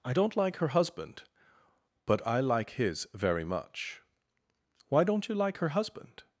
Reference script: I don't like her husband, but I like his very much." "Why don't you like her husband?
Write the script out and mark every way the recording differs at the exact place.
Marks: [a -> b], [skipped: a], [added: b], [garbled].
I don't like her husband, but I like his very much." "Why don't you like her husband?